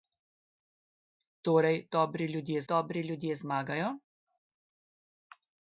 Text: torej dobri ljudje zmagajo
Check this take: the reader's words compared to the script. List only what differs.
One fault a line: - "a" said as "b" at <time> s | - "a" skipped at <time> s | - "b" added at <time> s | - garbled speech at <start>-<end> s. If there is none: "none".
- "dobri ljudje" added at 2.7 s